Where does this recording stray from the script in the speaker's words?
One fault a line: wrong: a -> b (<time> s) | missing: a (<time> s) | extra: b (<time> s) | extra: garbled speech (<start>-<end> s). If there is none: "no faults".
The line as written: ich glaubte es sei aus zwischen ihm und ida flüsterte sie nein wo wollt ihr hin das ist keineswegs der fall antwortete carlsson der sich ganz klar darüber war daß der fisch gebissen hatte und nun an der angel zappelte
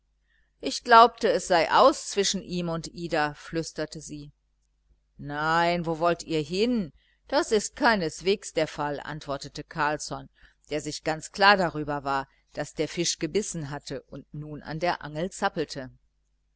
no faults